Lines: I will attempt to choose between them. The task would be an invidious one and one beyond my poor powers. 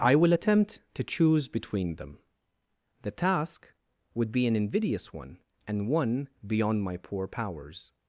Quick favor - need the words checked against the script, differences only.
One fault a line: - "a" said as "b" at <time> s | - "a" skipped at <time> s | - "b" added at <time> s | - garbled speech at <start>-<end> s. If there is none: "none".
none